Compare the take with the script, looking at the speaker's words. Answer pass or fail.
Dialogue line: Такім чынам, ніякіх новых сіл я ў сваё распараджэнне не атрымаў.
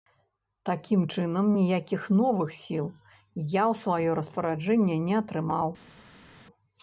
pass